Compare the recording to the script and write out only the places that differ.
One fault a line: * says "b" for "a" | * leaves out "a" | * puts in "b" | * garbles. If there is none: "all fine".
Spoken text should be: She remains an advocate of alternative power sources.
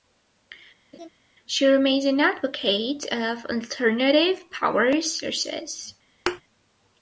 all fine